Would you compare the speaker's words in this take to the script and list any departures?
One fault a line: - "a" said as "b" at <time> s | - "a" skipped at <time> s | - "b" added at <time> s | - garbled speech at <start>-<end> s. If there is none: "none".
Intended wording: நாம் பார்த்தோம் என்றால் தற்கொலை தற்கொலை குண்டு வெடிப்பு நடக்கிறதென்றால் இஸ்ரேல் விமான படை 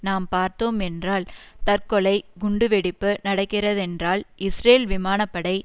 - "தற்கொலை" skipped at 2.1 s